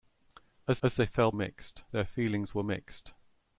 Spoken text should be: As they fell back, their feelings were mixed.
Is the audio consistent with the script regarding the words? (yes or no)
no